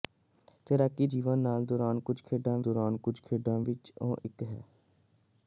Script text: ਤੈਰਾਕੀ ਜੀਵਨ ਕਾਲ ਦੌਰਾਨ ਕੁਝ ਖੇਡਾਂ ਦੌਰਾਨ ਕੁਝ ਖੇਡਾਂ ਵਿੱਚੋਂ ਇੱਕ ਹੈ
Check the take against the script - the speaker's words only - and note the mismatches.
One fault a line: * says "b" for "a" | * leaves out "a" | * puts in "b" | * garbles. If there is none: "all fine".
all fine